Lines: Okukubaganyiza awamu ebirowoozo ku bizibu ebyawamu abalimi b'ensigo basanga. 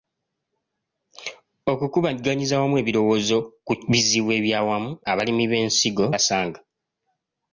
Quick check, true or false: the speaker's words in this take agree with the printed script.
true